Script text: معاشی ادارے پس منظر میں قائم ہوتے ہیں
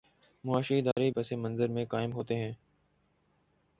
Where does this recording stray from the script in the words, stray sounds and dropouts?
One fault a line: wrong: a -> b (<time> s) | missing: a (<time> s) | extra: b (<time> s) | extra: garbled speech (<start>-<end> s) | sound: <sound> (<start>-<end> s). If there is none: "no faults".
sound: dropout (0.9-1.0 s)